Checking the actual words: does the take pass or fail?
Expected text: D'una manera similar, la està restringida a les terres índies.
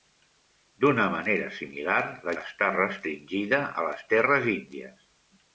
pass